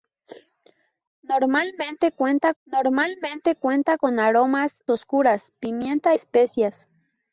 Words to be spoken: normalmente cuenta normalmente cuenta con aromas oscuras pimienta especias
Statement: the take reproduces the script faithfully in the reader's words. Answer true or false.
true